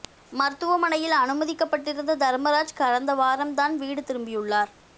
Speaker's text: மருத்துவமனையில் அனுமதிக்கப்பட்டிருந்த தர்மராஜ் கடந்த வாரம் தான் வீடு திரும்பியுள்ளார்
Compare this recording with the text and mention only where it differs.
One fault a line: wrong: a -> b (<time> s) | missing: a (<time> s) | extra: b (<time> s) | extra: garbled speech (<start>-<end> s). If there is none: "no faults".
no faults